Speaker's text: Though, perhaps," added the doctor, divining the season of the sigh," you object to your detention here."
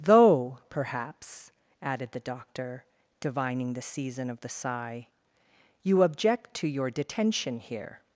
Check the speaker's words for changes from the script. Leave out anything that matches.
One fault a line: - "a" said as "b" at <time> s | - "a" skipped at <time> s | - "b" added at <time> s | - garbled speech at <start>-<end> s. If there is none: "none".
none